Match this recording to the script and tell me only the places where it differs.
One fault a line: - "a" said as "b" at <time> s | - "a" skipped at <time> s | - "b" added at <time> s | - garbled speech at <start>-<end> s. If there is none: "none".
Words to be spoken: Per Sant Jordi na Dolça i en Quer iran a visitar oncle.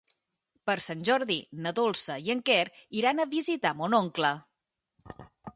- "mon" added at 3.8 s